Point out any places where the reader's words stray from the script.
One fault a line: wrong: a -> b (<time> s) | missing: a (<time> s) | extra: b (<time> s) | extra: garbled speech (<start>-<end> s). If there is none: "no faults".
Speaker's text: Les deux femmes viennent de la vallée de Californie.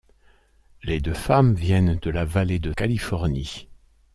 no faults